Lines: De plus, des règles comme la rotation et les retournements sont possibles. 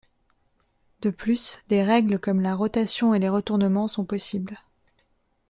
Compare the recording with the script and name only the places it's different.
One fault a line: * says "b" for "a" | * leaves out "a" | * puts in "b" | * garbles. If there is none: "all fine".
all fine